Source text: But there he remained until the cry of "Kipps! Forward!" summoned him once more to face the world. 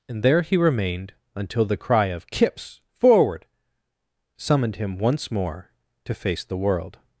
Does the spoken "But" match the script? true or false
false